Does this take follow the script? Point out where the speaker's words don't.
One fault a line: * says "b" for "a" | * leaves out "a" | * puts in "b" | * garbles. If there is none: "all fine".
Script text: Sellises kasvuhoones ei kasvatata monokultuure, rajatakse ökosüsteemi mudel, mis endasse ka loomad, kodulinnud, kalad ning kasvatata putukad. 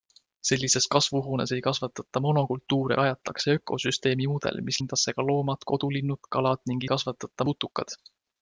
all fine